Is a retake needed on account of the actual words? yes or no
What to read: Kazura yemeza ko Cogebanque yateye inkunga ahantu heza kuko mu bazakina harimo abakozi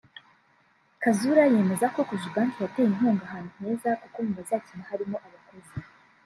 no